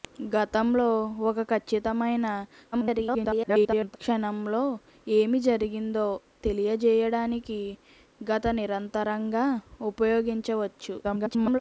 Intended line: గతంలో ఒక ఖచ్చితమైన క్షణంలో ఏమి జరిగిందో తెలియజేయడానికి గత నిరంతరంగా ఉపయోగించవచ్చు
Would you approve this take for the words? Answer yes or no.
no